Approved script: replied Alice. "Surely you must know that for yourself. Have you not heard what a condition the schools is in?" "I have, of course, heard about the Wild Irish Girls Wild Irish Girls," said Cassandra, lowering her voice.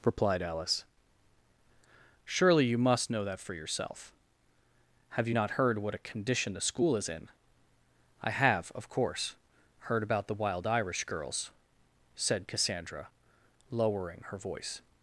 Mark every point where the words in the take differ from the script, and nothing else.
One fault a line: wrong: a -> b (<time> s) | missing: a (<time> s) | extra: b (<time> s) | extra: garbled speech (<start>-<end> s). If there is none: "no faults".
wrong: schools -> school (6.6 s)
missing: Wild Irish Girls (11.5 s)